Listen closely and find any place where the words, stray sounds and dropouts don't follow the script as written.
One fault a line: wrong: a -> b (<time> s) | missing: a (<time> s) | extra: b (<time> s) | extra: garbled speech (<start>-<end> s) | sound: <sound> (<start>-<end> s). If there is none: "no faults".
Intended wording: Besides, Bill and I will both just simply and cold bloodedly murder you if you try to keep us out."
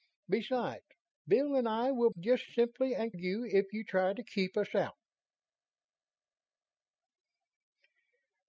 missing: both (2.1 s)
missing: cold bloodedly murder (3.1 s)